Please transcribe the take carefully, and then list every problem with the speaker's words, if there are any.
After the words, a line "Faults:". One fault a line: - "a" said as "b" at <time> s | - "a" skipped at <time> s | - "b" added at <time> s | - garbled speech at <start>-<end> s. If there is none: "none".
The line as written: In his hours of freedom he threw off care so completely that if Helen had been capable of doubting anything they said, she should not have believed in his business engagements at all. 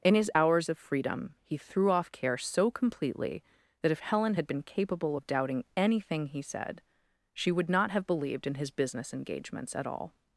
In his hours of freedom he threw off care so completely that if Helen had been capable of doubting anything he said, she would not have believed in his business engagements at all.
Faults:
- "they" said as "he" at 6.3 s
- "should" said as "would" at 7.5 s